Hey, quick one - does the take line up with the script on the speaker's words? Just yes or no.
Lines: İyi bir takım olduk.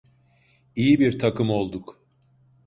yes